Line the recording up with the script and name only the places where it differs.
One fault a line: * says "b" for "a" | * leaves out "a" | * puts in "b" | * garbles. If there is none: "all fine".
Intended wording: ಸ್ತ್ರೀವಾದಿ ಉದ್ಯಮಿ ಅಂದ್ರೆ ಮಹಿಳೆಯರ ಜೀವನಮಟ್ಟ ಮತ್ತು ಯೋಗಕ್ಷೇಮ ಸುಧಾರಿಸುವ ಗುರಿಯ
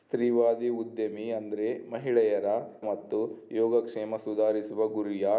* leaves out "ಜೀವನಮಟ್ಟ"